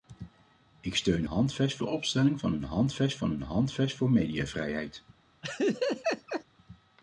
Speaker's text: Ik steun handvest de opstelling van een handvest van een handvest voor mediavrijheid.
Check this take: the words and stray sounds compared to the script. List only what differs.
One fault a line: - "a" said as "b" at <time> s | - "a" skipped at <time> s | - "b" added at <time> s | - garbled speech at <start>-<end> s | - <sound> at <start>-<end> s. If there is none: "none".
- laugh at 5.4-6.4 s